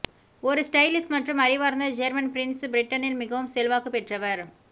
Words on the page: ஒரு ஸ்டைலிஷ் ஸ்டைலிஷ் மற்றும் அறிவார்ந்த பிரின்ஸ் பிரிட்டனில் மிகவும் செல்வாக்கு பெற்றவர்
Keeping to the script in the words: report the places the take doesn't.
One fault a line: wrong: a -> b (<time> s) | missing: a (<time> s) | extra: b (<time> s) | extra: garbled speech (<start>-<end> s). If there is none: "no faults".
missing: ஸ்டைலிஷ் (1.1 s)
extra: ஜேர்மன் (2.0 s)